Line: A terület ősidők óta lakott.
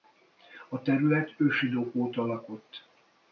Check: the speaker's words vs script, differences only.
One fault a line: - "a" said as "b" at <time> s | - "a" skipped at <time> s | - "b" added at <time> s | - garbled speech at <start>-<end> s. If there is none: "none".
none